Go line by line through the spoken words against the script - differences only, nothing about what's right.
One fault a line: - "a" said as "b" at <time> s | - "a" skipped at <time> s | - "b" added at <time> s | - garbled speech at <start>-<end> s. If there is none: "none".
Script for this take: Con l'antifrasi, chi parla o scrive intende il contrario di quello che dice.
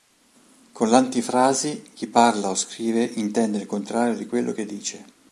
none